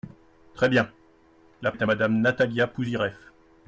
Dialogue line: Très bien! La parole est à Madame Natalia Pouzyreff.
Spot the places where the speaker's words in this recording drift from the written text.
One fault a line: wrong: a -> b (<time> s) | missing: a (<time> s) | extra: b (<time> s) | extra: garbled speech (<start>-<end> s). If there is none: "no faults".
missing: parole (1.7 s)